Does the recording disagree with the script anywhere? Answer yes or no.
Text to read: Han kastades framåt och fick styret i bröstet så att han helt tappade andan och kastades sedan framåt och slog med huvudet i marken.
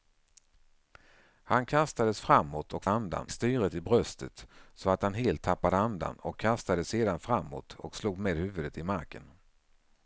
yes